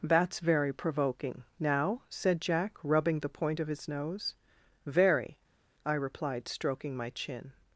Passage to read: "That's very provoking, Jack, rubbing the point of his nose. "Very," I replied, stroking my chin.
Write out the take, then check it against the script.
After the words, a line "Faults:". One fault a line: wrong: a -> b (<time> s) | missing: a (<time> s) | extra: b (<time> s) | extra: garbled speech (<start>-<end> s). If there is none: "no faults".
"That's very provoking, now," said Jack, rubbing the point of his nose. "Very," I replied, stroking my chin.
Faults:
extra: now said (1.6 s)